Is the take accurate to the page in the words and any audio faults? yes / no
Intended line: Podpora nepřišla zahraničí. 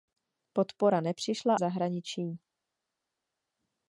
yes